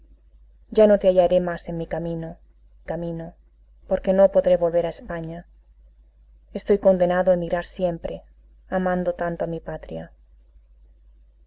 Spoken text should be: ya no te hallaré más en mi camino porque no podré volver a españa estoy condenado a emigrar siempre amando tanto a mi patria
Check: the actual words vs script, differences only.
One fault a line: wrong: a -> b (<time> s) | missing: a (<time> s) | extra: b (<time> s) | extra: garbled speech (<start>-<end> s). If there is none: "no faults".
extra: camino (2.8 s)